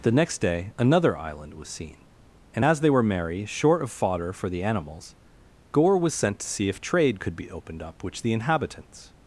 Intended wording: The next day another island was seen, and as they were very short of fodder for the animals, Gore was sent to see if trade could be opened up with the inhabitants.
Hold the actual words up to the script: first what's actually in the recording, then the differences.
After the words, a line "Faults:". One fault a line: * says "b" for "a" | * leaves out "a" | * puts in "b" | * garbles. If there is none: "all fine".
The next day another island was seen, and as they were merry short of fodder for the animals, Gore was sent to see if trade could be opened up which the inhabitants.
Faults:
* says "merry" for "very"
* says "which" for "with"